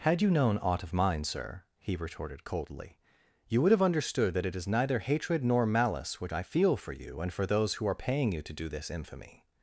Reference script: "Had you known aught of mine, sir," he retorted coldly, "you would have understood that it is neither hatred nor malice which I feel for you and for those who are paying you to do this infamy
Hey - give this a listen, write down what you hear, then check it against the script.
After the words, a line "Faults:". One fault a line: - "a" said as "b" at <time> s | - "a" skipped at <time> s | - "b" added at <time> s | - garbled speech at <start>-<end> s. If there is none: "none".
"Had you known aught of mine, sir," he retorted coldly, "you would have understood that it is neither hatred nor malice which I feel for you and for those who are paying you to do this infamy
Faults:
none